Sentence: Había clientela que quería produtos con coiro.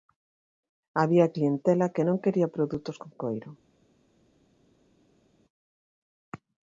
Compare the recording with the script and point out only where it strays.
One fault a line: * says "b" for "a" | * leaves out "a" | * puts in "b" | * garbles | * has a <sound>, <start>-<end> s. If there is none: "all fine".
* puts in "non"